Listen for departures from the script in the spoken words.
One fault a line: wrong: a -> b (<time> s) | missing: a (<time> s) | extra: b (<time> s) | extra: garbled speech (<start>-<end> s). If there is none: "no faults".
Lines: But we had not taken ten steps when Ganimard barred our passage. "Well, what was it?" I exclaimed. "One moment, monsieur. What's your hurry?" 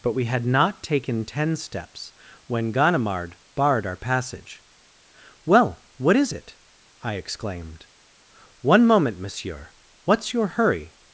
wrong: was -> is (6.2 s)